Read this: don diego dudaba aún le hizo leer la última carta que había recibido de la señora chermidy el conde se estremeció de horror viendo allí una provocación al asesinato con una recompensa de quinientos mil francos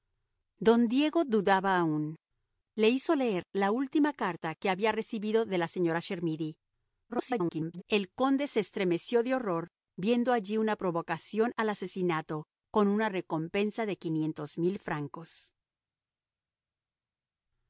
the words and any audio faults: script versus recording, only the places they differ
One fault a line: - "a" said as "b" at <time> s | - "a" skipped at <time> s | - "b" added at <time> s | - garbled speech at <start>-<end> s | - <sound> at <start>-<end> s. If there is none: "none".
- garbled speech at 7.1-7.8 s